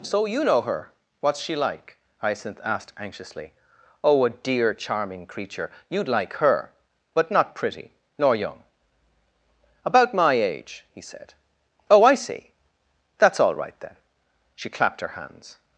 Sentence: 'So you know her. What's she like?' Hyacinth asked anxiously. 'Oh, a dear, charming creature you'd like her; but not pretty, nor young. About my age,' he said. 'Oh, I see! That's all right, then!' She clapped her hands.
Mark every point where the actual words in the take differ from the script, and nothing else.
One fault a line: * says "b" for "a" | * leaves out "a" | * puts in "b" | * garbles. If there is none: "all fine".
all fine